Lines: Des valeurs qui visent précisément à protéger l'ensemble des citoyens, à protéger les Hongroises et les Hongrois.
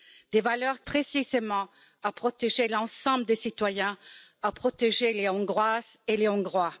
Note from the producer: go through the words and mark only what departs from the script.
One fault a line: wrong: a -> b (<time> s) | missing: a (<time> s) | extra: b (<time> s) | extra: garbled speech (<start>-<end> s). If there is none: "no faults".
missing: qui visent (0.8 s)